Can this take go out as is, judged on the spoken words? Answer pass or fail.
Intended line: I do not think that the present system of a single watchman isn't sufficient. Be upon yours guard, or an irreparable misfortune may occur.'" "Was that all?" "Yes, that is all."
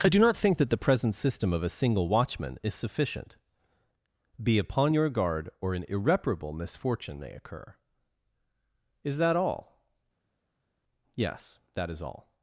fail